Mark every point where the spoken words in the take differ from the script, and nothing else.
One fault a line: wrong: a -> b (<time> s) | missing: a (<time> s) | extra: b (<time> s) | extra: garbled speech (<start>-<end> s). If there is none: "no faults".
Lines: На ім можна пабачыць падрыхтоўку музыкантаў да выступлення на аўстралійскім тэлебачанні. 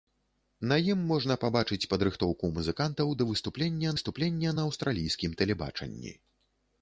extra: выступлення (3.9 s)